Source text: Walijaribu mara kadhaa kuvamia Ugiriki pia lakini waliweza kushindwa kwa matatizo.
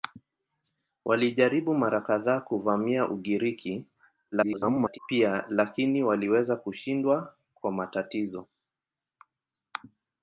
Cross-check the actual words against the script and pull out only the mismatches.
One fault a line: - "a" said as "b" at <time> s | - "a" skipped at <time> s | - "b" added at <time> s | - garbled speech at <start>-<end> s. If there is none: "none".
- garbled speech at 4.3-5.0 s